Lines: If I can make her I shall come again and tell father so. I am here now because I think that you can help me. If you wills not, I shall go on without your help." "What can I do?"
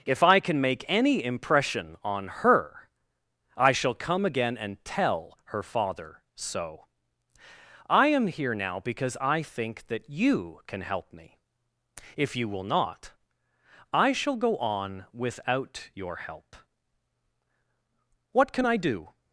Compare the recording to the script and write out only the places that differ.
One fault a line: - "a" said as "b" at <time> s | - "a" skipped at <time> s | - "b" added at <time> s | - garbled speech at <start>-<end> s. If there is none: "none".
- "any impression on" added at 0.9 s
- "her" added at 5.5 s
- "wills" said as "will" at 12.5 s